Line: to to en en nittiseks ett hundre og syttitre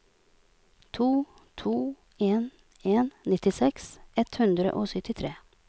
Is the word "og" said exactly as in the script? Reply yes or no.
yes